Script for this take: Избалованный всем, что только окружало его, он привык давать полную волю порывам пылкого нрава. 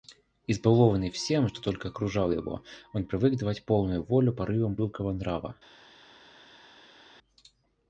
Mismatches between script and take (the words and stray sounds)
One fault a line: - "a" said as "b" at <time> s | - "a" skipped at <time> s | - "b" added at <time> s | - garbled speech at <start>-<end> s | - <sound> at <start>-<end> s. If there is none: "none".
none